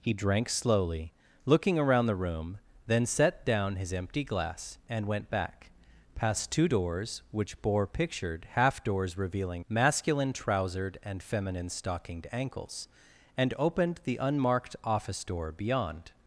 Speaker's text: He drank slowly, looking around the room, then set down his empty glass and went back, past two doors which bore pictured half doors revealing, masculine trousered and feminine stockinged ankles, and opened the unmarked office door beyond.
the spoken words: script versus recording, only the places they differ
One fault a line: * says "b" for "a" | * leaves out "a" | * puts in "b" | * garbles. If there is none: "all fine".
all fine